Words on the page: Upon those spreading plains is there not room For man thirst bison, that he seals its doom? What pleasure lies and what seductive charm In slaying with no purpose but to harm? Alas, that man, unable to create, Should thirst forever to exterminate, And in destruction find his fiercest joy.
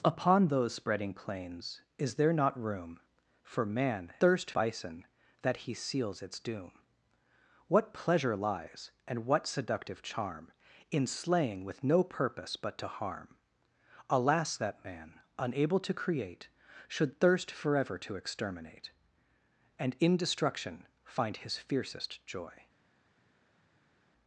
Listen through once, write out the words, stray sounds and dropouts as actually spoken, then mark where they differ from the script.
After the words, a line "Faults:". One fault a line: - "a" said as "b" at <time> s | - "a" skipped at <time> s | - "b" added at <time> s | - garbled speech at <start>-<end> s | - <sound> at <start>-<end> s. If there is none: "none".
Upon those spreading plains is there not room For man thirst bison, that he seals its doom? What pleasure lies and what seductive charm In slaying with no purpose but to harm? Alas, that man, unable to create, Should thirst forever to exterminate, And in destruction find his fiercest joy.
Faults:
none